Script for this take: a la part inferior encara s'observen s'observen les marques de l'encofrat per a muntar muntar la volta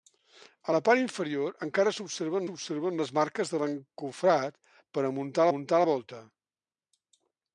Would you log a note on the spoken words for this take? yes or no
no